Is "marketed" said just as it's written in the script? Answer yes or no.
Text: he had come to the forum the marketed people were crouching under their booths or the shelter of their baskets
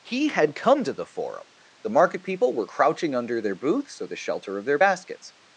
no